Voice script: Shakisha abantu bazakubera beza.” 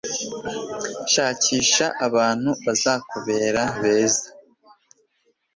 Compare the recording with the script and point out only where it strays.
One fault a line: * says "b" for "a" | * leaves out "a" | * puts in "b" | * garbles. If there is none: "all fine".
all fine